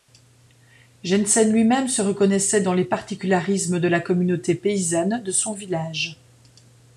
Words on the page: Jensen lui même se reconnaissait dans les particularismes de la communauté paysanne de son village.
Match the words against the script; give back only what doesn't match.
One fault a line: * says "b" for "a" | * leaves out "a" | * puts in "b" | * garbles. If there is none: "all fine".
all fine